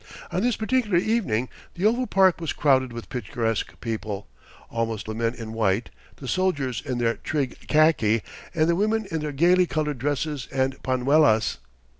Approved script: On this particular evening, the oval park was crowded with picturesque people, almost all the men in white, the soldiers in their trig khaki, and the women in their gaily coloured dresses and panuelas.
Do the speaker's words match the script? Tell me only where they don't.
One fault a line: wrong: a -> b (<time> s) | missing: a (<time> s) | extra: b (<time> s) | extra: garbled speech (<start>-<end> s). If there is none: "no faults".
missing: all (5.1 s)